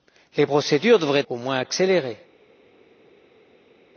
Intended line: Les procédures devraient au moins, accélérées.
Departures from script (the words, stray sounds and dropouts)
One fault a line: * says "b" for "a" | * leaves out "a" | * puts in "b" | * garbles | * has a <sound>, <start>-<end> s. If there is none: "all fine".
all fine